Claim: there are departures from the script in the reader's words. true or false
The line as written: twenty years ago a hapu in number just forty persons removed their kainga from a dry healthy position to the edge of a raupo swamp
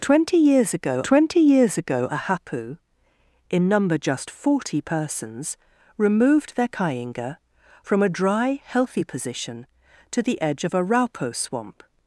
true